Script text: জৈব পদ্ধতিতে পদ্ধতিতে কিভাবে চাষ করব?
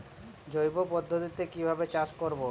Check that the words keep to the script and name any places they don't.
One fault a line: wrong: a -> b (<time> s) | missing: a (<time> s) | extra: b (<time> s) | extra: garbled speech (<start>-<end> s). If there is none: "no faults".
missing: পদ্ধতিতে (1.4 s)